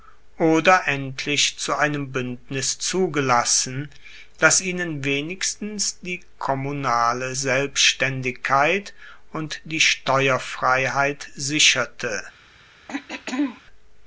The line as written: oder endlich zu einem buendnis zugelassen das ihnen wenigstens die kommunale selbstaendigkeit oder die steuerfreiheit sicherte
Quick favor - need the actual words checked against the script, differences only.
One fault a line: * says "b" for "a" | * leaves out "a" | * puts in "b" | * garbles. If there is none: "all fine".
* says "und" for "oder"